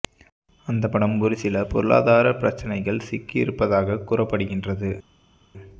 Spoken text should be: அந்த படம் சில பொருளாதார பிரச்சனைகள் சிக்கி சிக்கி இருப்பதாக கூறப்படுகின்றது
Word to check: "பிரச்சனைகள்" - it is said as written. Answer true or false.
true